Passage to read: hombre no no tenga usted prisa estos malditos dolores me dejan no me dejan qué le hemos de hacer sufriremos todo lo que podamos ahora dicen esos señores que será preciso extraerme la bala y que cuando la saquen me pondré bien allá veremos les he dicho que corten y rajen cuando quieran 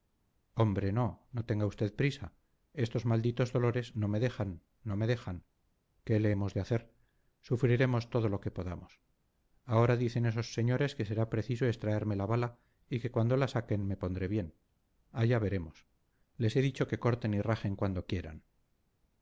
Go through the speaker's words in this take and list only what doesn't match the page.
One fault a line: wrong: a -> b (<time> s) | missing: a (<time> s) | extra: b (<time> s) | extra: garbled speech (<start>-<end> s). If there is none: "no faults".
extra: no (4.0 s)